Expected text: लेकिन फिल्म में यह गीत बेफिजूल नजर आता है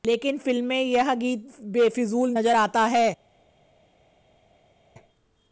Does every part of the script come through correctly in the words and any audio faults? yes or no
yes